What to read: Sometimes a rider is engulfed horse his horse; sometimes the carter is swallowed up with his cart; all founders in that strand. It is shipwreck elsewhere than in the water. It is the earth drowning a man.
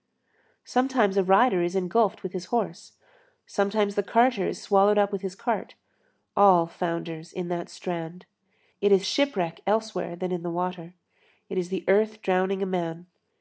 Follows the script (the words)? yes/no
no